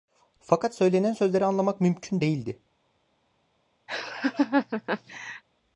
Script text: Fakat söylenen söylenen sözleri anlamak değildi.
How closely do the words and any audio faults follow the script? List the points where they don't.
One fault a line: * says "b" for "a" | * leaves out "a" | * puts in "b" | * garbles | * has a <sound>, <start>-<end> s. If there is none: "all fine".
* leaves out "söylenen"
* puts in "mümkün"
* has a laugh, 3.9-5.4 s